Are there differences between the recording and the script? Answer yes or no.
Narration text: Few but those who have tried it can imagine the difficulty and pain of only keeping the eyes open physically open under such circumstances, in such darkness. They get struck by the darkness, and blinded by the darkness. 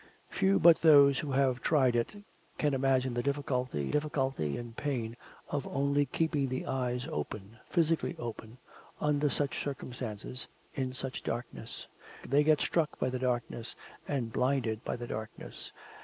yes